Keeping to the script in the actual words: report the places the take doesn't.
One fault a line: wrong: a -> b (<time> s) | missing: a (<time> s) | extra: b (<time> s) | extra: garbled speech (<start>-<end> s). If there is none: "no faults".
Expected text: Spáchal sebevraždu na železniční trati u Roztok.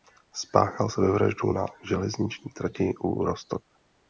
no faults